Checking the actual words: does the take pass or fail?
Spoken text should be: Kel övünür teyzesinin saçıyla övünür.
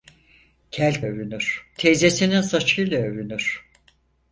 pass